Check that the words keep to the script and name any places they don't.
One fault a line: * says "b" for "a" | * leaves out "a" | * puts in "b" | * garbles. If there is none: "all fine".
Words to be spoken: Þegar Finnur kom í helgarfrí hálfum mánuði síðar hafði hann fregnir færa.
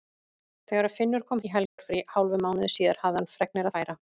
all fine